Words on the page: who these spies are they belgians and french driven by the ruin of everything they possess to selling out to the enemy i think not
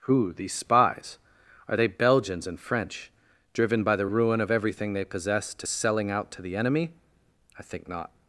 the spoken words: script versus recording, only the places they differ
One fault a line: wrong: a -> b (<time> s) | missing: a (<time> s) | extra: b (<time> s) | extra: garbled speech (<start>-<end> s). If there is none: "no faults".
no faults